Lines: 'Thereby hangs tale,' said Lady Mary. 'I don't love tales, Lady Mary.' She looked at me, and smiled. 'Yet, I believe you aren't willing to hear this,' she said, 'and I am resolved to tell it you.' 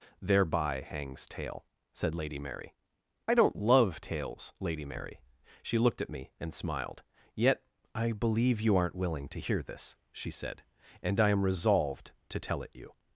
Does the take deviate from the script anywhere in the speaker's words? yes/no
no